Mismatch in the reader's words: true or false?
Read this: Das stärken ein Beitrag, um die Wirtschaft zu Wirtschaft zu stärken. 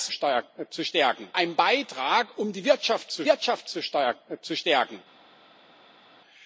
false